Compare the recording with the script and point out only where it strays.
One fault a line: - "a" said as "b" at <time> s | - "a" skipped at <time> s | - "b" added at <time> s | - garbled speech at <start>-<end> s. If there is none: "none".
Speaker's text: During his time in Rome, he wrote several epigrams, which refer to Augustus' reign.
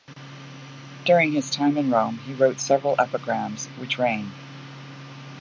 - "refer to Augustus" skipped at 4.0 s